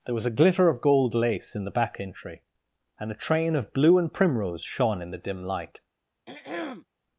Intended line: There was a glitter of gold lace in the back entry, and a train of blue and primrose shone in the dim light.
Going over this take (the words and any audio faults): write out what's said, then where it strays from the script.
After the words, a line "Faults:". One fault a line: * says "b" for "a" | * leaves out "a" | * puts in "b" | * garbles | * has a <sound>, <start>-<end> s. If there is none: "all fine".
There was a glitter of gold lace in the back entry, and a train of blue and primrose shone in the dim light.
Faults:
* has a throat clearing, 6.3-6.9 s